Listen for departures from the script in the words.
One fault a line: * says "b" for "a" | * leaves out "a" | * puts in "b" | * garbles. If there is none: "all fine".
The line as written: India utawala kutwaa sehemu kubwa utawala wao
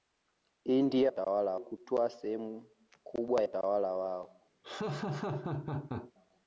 all fine